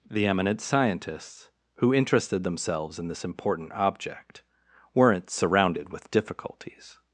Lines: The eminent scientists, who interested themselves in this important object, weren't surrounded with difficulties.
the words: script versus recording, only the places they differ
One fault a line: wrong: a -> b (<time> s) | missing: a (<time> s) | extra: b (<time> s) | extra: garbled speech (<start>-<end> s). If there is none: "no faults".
no faults